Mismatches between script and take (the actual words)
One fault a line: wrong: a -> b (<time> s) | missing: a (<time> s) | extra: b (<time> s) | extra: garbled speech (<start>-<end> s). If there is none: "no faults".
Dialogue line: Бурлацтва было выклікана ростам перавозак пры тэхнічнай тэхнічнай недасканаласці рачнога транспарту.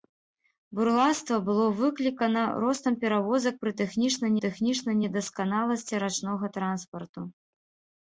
no faults